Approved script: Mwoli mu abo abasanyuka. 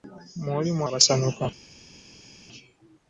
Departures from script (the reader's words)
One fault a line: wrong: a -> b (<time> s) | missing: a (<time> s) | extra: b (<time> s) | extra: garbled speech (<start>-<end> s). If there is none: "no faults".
missing: abo (0.8 s)